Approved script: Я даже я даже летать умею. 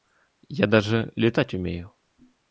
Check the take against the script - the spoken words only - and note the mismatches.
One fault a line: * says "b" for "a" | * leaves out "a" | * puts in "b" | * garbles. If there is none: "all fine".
* leaves out "я даже"